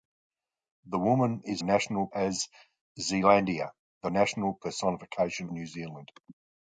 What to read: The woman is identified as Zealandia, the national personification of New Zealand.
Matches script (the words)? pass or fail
fail